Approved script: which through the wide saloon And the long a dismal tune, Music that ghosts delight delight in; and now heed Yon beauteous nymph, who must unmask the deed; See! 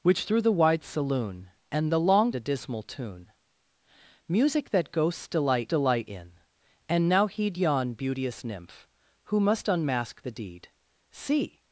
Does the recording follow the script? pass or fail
pass